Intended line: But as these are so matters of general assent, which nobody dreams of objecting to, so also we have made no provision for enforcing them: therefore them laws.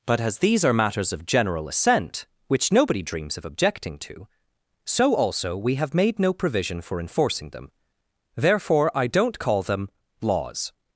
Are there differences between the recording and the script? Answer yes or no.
yes